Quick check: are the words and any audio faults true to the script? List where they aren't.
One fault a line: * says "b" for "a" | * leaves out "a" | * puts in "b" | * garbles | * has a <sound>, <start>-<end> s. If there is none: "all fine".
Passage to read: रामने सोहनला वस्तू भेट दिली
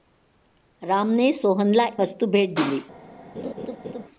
* has a laugh, 3.3-4.0 s